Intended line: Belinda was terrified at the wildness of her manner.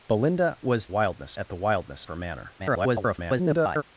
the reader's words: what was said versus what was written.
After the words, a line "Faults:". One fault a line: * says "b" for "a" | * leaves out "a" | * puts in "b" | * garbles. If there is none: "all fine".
Belinda was wildness at the wildness her manner. [garbled]
Faults:
* says "wildness" for "terrified"
* leaves out "of"
* garbles